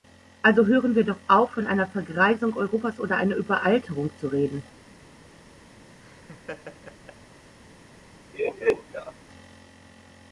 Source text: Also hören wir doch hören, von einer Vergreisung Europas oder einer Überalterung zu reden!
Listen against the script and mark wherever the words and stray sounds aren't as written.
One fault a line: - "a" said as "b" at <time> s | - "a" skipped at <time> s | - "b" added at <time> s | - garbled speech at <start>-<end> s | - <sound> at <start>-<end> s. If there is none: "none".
- "hören" said as "auf" at 1.3 s
- laugh at 6.0-7.2 s
- laugh at 8.3-9.1 s